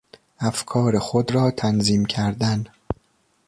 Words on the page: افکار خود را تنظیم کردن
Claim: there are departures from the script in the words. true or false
false